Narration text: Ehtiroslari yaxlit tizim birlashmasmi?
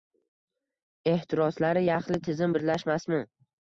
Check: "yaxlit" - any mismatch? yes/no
no